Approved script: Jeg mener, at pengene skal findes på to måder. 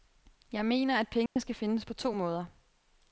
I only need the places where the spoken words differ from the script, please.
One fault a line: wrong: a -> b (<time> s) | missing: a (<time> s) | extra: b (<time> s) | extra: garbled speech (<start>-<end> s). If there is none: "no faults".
no faults